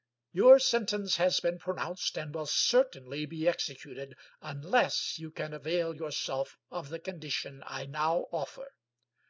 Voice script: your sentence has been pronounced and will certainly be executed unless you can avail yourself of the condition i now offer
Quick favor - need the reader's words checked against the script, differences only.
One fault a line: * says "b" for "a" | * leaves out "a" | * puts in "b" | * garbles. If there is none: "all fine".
all fine